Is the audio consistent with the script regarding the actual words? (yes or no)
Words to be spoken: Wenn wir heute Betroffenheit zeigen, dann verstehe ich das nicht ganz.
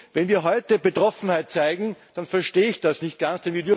yes